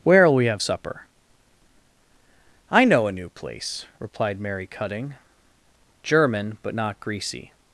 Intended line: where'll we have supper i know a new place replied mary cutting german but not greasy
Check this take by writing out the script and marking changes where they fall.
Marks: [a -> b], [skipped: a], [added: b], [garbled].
where'll we have supper i know a new place replied mary cutting german but not greasy